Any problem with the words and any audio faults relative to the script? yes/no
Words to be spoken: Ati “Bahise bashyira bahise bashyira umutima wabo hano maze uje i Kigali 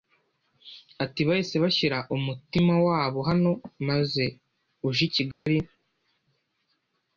yes